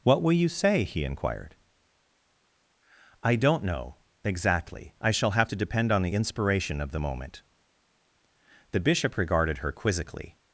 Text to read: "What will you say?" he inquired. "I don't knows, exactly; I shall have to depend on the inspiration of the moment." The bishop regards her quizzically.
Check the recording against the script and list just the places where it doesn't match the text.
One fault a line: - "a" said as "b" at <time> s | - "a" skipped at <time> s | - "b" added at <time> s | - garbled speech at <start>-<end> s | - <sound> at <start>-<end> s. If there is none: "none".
- "knows" said as "know" at 3.6 s
- "regards" said as "regarded" at 9.2 s